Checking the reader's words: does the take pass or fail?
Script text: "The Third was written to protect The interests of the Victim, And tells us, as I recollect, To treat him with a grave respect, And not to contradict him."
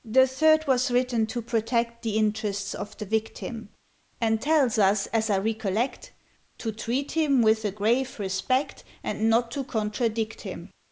pass